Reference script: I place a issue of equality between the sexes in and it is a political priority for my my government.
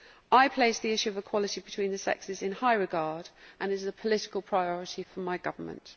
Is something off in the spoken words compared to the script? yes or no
yes